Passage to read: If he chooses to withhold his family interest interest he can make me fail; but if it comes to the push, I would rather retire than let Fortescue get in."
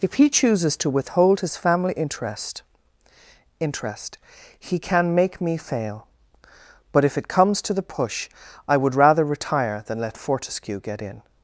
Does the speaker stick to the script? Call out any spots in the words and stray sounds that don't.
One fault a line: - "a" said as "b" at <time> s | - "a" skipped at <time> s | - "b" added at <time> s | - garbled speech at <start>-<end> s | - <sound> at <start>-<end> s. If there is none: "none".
none